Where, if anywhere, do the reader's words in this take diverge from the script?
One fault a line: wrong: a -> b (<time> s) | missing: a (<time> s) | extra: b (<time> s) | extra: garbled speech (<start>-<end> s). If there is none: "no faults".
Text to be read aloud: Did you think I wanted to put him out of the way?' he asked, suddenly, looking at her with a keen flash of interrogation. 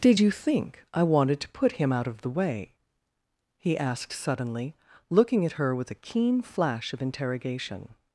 no faults